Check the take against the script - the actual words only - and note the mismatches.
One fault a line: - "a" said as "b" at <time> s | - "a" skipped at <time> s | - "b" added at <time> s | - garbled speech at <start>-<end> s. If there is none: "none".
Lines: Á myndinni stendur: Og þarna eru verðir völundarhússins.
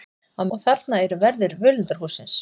- "myndinni stendur" skipped at 0.4 s